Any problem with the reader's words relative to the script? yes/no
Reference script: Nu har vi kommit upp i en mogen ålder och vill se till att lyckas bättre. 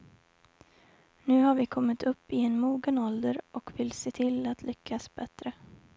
no